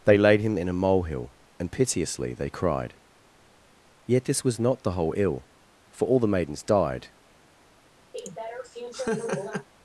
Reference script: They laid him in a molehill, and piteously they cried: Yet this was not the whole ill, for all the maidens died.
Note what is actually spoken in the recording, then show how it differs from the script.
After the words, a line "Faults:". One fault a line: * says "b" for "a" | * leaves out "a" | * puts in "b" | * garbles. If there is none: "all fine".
They laid him in a molehill, and piteously they cried: Yet this was not the whole ill, for all the maidens died.
Faults:
all fine